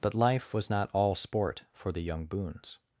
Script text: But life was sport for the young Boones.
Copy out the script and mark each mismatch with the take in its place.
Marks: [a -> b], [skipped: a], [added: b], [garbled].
But life was [added: not all] sport for the young Boones.